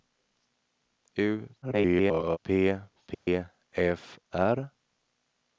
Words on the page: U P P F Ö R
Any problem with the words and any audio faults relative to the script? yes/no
yes